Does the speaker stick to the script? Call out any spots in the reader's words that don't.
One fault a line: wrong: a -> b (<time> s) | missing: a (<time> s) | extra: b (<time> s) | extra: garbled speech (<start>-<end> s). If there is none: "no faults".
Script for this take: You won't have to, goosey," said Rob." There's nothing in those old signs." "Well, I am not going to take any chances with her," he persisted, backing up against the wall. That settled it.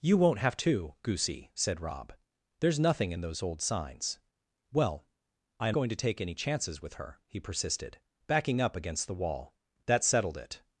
missing: not (5.8 s)